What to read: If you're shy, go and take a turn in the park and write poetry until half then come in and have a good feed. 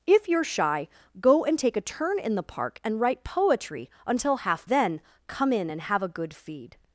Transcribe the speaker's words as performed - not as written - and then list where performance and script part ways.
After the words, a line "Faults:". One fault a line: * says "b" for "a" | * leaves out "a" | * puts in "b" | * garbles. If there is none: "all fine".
If you're shy, go and take a turn in the park and write poetry until half then come in and have a good feed.
Faults:
all fine